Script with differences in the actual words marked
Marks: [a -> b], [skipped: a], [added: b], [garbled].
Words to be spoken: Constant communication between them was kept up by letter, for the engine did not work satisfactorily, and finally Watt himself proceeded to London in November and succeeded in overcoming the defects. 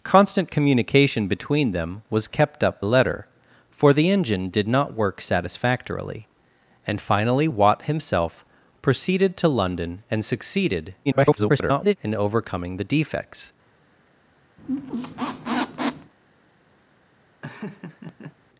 Constant communication between them was kept up [skipped: by] letter, for the engine did not work satisfactorily, and finally Watt himself proceeded to London [skipped: in November] and succeeded [garbled] in overcoming the defects.